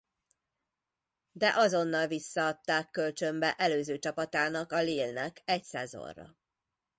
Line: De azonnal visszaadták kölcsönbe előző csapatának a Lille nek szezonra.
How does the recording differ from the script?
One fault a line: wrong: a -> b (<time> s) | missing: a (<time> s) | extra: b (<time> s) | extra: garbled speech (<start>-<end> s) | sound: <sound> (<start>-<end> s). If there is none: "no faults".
extra: egy (5.4 s)